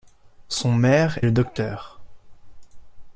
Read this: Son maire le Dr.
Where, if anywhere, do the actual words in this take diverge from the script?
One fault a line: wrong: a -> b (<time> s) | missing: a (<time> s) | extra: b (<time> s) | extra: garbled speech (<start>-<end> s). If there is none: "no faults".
no faults